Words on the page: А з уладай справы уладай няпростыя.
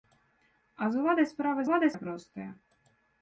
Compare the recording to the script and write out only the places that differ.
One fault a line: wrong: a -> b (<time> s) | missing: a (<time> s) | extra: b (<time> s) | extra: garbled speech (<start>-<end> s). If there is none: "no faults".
no faults